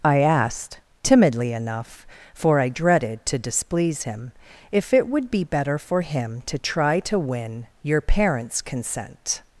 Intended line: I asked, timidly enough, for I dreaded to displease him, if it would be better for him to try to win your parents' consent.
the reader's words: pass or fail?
pass